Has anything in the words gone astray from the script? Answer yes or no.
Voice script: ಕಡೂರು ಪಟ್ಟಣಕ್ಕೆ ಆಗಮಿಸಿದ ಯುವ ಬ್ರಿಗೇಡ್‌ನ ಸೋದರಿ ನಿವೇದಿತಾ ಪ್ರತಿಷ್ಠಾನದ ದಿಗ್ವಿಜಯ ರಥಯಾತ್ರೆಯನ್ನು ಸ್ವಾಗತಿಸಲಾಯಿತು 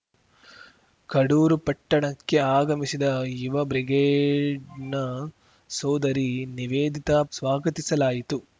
yes